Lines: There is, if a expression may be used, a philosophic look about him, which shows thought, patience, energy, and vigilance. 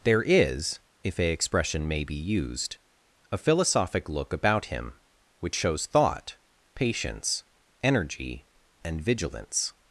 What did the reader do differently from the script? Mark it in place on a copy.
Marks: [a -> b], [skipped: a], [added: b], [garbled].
There is, if a expression may be used, a philosophic look about him, which shows thought, patience, energy, and vigilance.